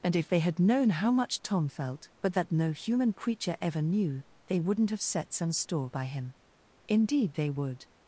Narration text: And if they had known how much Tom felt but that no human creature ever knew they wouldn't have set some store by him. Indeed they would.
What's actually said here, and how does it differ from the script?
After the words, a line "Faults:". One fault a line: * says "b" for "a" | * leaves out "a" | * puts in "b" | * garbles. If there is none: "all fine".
And if they had known how much Tom felt but that no human creature ever knew they wouldn't have set some store by him. Indeed they would.
Faults:
all fine